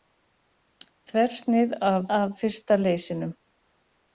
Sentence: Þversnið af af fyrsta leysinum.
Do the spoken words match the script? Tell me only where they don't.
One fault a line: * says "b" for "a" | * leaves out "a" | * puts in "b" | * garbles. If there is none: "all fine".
all fine